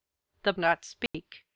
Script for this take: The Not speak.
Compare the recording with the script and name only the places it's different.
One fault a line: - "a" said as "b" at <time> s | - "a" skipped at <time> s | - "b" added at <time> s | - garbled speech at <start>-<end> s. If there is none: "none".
none